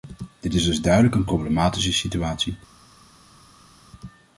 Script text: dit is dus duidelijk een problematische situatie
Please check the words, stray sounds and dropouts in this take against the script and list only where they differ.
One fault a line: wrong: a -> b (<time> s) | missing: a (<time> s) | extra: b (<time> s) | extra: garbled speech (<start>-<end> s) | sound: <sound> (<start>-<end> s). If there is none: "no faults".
no faults